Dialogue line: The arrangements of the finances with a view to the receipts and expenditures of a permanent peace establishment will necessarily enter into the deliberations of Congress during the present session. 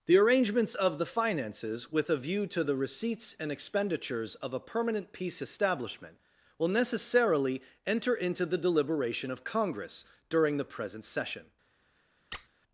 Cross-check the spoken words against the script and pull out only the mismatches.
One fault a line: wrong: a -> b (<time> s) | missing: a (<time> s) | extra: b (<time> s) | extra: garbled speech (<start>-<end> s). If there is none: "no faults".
wrong: deliberations -> deliberation (8.6 s)